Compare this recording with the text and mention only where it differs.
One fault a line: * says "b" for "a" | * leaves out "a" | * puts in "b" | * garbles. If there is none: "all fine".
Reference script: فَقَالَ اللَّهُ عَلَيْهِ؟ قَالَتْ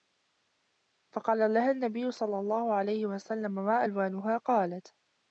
* puts in "لَهَا النَّبِيُّ صَلَّى"
* puts in "وَسَلَّمَ مَا أَلْوَانُهَا"